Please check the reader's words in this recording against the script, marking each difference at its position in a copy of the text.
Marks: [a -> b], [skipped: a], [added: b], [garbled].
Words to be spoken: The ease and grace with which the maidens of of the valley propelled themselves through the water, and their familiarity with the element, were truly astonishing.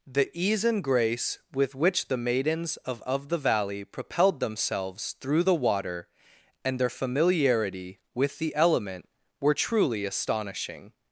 The ease and grace with which the maidens of of the valley propelled themselves through the water, and their familiarity with the element, were truly astonishing.